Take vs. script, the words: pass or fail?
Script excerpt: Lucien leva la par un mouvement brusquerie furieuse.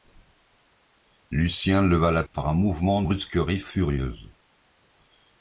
pass